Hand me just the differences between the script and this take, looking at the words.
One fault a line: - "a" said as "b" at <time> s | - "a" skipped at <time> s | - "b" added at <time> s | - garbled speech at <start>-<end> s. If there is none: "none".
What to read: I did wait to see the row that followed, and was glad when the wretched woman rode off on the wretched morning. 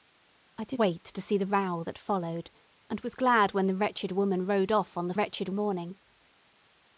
none